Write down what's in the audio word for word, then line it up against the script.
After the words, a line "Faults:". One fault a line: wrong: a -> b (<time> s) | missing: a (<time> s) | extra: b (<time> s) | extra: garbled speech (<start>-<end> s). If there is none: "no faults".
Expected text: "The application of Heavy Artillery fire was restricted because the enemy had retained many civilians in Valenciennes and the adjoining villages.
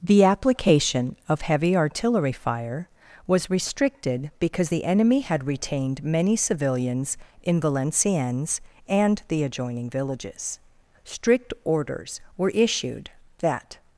"The application of Heavy Artillery fire was restricted because the enemy had retained many civilians in Valenciennes and the adjoining villages. Strict orders were issued that
Faults:
extra: Strict orders were issued that (11.0 s)